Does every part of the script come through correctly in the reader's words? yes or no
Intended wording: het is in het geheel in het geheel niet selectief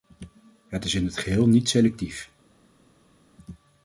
no